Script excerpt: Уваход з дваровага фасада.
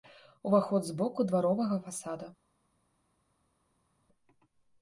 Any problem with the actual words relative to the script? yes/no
yes